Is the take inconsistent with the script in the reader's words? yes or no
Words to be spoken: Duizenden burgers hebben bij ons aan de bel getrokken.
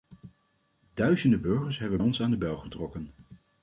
yes